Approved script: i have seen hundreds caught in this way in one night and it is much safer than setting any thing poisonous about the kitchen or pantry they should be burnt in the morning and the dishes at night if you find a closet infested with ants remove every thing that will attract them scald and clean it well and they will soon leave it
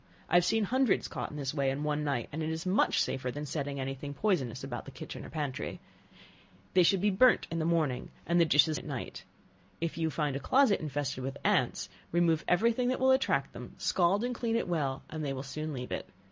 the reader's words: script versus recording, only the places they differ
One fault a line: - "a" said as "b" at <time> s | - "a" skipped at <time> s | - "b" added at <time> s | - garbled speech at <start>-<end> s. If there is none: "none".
none